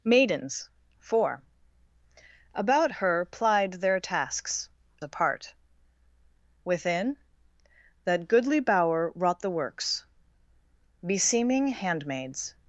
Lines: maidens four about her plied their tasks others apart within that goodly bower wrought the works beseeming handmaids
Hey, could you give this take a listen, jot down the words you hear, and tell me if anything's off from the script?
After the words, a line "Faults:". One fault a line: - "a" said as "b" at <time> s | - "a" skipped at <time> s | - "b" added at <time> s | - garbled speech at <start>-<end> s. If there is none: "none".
maidens four about her plied their tasks apart within that goodly bower wrought the works beseeming handmaids
Faults:
- "others" skipped at 4.7 s